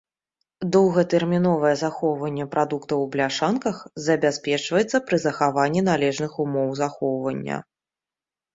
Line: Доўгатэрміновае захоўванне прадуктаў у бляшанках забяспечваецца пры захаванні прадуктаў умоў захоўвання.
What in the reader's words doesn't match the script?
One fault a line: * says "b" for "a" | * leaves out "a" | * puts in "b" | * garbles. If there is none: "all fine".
* says "належных" for "прадуктаў"